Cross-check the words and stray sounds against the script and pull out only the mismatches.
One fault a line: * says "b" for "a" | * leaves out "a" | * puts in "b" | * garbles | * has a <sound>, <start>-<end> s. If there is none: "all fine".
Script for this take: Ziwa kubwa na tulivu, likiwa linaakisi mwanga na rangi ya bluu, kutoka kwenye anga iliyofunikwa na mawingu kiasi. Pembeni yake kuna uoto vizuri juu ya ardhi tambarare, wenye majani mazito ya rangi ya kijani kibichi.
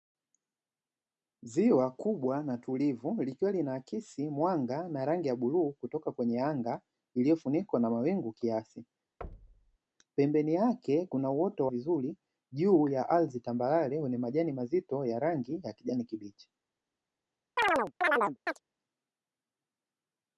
* has a thud, 9.2-9.8 s
* has a chirp, 17.6-18.6 s